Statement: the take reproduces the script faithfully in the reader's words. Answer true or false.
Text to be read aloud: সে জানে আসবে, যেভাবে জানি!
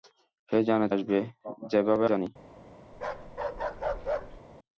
true